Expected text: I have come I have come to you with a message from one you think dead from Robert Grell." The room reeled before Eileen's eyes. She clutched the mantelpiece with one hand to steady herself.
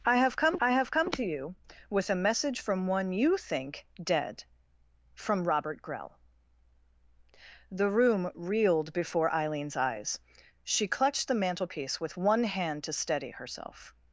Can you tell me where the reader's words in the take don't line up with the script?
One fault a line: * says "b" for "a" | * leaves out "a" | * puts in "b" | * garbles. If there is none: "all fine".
all fine